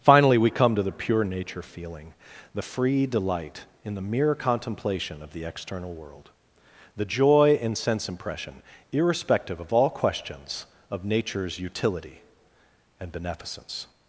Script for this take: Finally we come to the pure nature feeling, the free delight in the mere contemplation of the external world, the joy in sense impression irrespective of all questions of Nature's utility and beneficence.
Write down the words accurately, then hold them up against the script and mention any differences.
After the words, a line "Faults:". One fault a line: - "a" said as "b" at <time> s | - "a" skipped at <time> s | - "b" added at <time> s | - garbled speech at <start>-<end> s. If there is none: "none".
Finally we come to the pure nature feeling, the free delight in the mere contemplation of the external world, the joy in sense impression irrespective of all questions of Nature's utility and beneficence.
Faults:
none